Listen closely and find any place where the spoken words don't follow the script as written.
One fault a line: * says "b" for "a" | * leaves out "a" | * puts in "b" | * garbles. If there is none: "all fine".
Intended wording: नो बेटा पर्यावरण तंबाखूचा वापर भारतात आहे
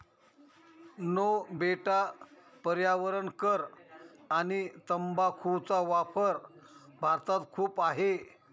* puts in "कर आणि"
* puts in "खूप"